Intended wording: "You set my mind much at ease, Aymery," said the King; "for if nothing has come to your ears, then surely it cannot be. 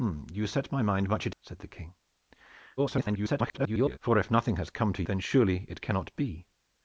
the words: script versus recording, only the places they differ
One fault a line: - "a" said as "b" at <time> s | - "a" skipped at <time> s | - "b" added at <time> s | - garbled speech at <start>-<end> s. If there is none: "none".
- "ease Aymery" skipped at 1.4 s
- garbled speech at 2.8-4.0 s
- "your ears" skipped at 5.0 s